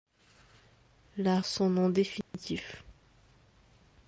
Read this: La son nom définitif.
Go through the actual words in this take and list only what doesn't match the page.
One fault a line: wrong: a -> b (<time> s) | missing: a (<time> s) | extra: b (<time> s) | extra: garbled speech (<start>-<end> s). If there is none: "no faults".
no faults